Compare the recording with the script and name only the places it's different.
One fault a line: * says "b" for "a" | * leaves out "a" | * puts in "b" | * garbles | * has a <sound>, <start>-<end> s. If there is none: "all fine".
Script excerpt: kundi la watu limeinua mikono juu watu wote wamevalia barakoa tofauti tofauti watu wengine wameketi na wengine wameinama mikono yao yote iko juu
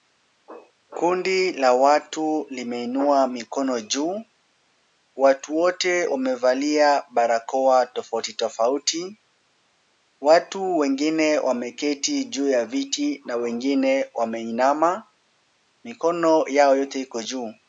* puts in "juu ya viti"